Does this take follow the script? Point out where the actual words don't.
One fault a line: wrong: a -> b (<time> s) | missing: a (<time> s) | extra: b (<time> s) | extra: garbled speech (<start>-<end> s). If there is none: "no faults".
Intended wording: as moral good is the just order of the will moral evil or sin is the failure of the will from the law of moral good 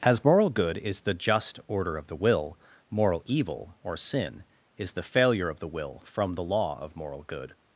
no faults